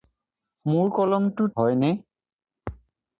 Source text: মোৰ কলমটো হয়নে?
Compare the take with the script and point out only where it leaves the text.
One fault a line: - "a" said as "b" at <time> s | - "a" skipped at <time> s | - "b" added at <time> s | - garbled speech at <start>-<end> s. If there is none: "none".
none